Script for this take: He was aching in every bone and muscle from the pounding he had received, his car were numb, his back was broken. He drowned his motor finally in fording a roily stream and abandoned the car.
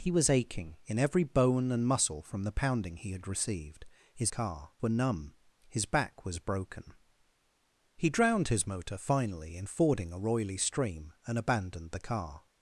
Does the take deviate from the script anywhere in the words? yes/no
no